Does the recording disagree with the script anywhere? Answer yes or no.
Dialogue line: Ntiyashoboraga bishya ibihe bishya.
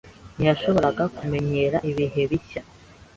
yes